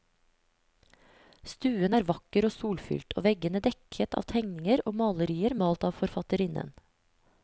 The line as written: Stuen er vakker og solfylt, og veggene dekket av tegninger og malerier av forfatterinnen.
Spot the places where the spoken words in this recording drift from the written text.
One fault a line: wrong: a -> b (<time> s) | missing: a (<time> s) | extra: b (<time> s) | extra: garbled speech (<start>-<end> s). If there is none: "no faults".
extra: malt (5.6 s)